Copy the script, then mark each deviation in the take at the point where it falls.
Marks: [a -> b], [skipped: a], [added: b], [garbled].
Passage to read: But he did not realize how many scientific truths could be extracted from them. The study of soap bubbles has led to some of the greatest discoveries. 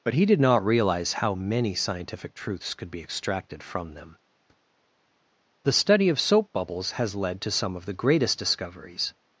But he did not realize how many scientific truths could be extracted from them. The study of soap bubbles has led to some of the greatest discoveries.